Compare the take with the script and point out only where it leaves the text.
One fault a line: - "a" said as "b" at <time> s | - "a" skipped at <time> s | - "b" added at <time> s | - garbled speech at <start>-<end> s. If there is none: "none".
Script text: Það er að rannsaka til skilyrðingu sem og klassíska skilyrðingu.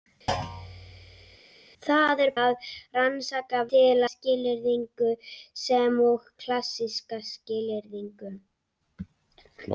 none